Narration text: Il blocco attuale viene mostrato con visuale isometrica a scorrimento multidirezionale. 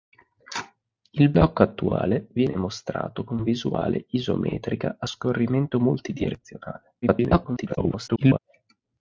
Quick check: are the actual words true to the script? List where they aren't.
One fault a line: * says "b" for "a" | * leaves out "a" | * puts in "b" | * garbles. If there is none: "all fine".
* garbles